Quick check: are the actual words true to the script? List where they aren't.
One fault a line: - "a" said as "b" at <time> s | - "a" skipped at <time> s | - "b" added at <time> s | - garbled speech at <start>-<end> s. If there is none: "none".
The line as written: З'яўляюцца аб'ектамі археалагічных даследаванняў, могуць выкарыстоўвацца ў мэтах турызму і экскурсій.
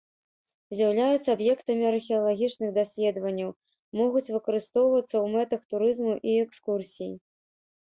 none